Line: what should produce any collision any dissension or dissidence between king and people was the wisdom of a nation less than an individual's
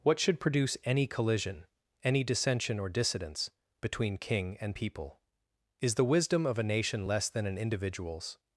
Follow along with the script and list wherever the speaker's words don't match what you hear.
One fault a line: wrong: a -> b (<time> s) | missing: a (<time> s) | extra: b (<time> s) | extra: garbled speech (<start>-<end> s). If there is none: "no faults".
wrong: was -> is (5.8 s)